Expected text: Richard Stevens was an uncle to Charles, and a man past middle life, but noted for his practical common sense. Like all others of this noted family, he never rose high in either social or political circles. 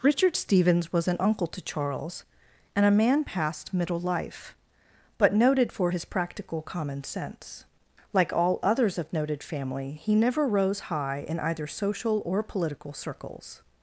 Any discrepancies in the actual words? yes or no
yes